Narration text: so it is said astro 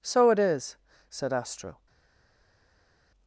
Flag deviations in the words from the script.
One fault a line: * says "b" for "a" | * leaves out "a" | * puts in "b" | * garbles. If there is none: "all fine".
all fine